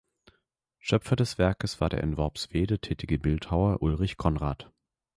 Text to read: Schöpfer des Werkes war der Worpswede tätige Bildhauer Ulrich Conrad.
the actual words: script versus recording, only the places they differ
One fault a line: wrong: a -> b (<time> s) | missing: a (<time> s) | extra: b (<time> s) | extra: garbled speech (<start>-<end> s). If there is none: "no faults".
extra: in (2.0 s)